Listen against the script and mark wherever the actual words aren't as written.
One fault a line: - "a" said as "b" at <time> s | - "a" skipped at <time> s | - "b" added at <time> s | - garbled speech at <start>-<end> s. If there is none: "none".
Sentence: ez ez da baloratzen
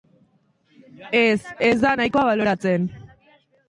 - "nahikoa" added at 1.9 s